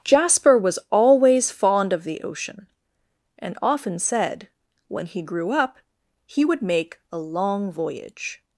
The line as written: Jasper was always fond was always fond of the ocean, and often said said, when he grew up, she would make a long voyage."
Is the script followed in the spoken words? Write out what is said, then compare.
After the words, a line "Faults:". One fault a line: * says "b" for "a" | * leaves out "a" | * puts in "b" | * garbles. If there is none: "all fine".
Jasper was always fond of the ocean, and often said, when he grew up, he would make a long voyage."
Faults:
* leaves out "was always fond"
* leaves out "said"
* says "he" for "she"